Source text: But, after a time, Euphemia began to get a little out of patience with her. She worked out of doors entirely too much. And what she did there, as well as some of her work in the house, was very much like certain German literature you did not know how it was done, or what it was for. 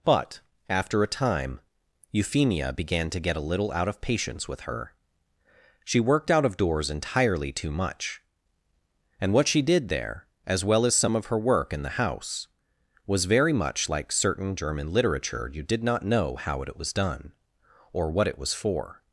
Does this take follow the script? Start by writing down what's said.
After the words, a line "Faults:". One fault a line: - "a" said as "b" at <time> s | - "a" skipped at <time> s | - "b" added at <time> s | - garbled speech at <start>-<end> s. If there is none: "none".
But, after a time, Euphemia began to get a little out of patience with her. She worked out of doors entirely too much. And what she did there, as well as some of her work in the house, was very much like certain German literature you did not know how it was done, or what it was for.
Faults:
none